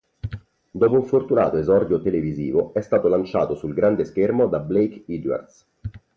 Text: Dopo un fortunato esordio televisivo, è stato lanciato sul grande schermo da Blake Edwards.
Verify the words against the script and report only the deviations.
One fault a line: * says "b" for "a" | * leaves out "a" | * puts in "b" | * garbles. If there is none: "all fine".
all fine